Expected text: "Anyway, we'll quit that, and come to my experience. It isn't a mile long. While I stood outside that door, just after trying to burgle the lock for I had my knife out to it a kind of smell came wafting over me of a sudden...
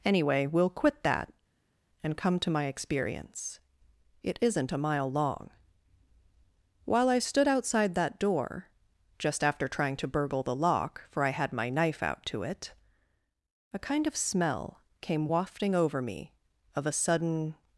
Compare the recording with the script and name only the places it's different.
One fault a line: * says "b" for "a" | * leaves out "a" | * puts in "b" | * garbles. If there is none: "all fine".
all fine